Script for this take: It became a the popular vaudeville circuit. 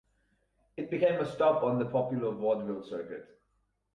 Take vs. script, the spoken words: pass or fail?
fail